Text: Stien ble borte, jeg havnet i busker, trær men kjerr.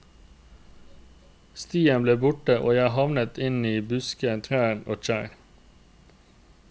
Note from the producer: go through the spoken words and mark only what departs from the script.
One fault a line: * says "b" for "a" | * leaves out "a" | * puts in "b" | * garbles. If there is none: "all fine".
* puts in "og"
* puts in "inn"
* says "og" for "men"